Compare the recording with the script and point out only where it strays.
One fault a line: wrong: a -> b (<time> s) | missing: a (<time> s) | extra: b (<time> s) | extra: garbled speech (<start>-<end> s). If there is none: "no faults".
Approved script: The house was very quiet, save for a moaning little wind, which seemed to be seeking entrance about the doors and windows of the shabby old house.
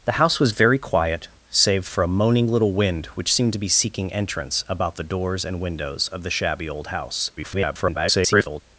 extra: garbled speech (7.4-8.6 s)